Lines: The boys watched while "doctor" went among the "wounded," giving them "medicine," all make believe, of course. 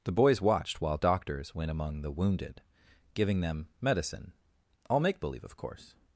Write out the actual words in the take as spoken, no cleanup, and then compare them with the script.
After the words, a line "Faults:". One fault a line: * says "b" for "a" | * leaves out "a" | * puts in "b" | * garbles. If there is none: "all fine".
The boys watched while "doctors" went among the "wounded," giving them "medicine," all make believe, of course.
Faults:
* says "doctors" for "doctor"